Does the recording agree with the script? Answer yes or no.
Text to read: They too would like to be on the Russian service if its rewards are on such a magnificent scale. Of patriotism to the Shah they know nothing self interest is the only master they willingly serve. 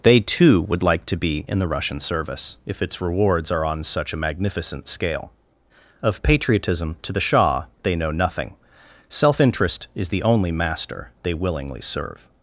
no